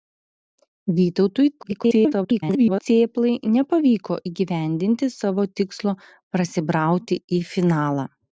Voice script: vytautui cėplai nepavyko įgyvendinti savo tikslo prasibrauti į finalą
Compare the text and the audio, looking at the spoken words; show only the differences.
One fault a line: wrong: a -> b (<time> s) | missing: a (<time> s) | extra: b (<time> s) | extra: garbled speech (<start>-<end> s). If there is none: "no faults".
extra: garbled speech (1.6-2.8 s)